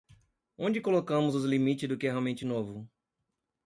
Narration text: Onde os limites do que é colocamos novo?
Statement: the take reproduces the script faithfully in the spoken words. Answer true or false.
false